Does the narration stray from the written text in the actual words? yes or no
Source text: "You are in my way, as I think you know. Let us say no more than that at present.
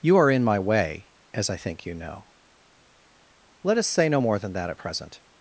no